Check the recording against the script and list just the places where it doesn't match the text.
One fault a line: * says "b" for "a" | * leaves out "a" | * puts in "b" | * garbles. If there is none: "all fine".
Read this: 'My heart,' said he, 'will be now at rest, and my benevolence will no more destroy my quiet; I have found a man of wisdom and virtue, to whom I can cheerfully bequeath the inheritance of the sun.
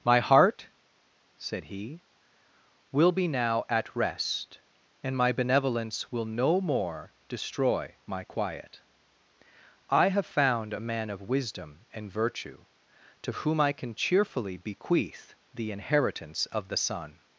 all fine